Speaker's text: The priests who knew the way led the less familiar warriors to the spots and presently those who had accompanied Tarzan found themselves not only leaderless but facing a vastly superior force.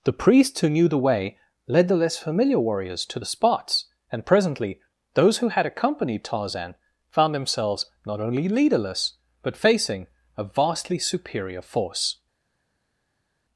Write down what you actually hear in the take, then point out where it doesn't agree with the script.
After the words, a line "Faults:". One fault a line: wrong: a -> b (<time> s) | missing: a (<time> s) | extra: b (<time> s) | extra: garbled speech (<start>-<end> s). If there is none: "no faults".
The priests who knew the way led the less familiar warriors to the spots and presently those who had accompanied Tarzan found themselves not only leaderless but facing a vastly superior force.
Faults:
no faults